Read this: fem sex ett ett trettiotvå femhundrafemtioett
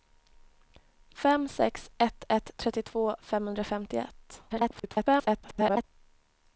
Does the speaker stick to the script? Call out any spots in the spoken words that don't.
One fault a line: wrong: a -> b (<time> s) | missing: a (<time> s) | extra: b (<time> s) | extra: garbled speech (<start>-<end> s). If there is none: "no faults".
extra: garbled speech (4.5-5.8 s)